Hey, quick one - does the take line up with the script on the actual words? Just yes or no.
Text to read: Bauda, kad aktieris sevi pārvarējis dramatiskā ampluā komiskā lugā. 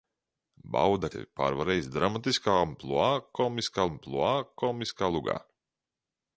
no